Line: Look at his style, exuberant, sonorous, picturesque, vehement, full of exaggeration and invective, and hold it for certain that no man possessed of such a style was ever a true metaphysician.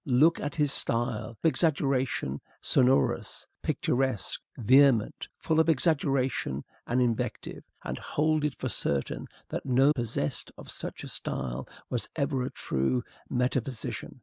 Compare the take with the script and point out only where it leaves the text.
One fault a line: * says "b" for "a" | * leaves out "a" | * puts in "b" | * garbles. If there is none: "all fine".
* says "exaggeration" for "exuberant"
* leaves out "man"